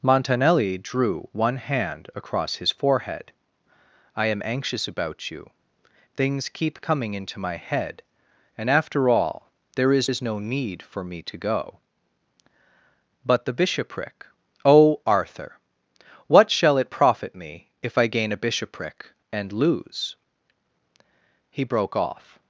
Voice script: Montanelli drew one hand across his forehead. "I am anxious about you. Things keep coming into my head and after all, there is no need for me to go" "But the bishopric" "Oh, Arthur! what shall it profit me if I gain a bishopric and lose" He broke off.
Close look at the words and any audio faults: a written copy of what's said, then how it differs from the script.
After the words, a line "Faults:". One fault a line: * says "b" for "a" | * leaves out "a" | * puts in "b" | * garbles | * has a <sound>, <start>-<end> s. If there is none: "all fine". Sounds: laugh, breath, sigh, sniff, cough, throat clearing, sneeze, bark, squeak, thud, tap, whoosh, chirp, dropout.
Montanelli drew one hand across his forehead. "I am anxious about you. Things keep coming into my head and after all, there is is no need for me to go" "But the bishopric" "Oh, Arthur! what shall it profit me if I gain a bishopric and lose" He broke off.
Faults:
* puts in "is"